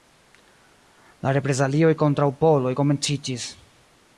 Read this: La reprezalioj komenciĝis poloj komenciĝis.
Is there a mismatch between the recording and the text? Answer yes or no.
yes